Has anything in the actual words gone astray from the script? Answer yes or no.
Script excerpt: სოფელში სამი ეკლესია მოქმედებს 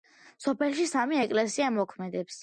no